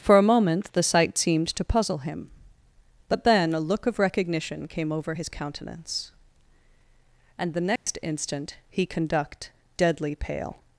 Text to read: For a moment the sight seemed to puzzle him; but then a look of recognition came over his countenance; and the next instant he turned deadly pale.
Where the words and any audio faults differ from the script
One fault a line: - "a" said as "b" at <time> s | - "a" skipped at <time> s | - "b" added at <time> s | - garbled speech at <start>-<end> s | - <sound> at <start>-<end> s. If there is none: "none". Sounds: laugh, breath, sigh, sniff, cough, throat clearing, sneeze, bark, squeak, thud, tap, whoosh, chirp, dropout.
- dropout at 7.8-7.9 s
- "turned" said as "conduct" at 8.9 s